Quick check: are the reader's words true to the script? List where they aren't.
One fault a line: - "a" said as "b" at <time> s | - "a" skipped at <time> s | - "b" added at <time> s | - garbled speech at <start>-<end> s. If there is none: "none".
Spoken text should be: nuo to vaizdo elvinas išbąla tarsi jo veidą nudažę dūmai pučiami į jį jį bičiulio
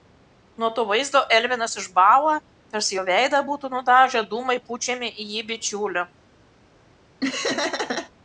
- "būtų" added at 3.5 s
- "jį" skipped at 5.5 s